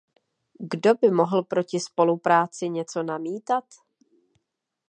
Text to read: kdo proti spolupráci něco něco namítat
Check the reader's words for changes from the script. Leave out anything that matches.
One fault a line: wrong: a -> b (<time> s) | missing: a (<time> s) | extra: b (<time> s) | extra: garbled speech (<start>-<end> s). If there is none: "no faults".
extra: by mohl (0.9 s)
missing: něco (3.0 s)